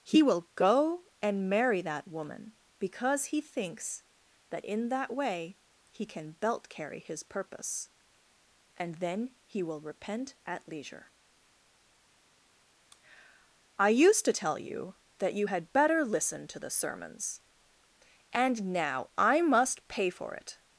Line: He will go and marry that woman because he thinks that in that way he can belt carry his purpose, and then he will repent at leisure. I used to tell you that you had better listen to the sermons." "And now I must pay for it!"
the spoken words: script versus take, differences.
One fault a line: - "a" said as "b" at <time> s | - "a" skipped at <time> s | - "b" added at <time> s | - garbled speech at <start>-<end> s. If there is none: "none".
none